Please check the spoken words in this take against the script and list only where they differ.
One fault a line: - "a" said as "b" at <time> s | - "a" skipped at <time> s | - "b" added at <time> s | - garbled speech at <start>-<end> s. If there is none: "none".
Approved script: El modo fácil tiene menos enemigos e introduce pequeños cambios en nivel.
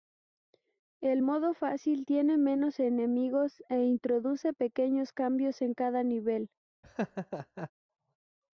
- "cada" added at 5.7 s